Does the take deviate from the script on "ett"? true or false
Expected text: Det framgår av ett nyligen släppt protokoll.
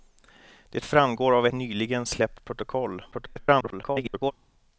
true